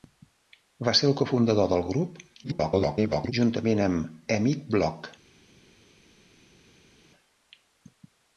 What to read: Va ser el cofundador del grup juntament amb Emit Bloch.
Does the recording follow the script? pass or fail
fail